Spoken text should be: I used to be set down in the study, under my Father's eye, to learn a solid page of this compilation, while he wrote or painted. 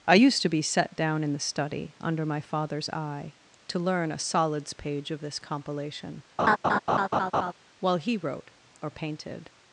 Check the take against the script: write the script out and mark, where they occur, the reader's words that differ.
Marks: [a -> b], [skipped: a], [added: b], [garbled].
I used to be set down in the study, under my Father's eye, to learn a [solid -> solids] page of this compilation, while he wrote or painted.